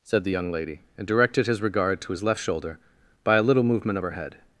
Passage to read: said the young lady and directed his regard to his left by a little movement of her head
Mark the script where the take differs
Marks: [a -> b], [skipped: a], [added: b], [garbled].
said the young lady and directed his regard to his left [added: shoulder] by a little movement of her head